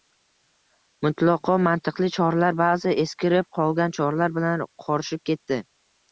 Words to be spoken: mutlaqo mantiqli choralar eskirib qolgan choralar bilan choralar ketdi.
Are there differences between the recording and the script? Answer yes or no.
yes